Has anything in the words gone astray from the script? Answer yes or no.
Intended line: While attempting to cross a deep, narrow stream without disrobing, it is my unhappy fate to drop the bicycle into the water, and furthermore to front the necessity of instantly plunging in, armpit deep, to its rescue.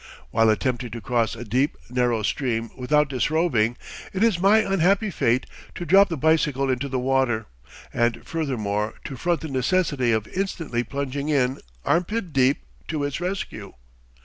no